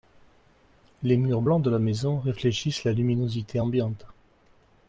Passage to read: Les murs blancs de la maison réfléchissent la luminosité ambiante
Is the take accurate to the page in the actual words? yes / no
yes